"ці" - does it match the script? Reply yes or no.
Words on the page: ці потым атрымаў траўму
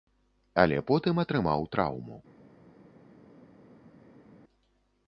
no